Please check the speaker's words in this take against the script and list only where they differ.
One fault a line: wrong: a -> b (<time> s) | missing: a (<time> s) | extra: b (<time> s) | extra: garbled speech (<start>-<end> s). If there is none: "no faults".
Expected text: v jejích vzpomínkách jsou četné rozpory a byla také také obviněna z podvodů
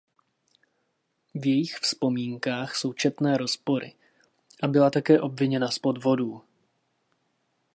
missing: také (5.2 s)